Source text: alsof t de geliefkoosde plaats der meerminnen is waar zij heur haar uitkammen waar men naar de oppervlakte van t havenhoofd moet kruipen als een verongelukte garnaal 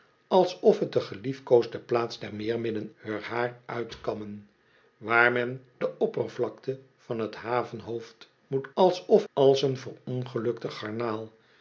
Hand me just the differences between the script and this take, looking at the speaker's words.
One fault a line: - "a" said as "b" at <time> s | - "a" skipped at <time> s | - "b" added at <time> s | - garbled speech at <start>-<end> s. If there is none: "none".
- "is waar zij" skipped at 2.9 s
- "naar" skipped at 5.6 s
- "kruipen" said as "alsof" at 8.7 s